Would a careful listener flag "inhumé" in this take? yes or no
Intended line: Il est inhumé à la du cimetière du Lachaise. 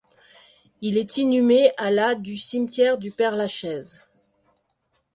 no